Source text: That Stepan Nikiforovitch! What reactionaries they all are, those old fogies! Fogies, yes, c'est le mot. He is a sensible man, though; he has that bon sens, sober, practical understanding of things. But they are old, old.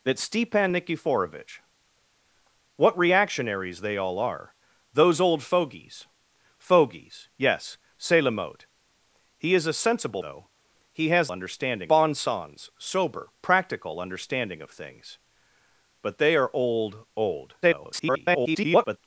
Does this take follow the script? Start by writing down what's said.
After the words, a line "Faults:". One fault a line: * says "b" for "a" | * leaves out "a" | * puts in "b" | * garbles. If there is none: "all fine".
That Stepan Nikiforovitch! What reactionaries they all are, those old fogies! Fogies, yes, c'est le mot. He is a sensible though; he has understanding bon sens, sober, practical understanding of things. But they are old, old. [garbled]
Faults:
* leaves out "man"
* says "understanding" for "that"
* garbles